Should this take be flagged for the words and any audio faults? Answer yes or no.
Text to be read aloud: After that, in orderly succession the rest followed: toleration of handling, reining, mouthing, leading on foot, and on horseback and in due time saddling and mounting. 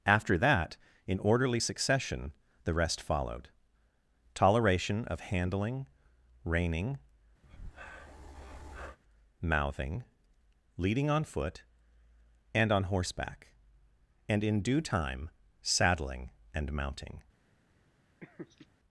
yes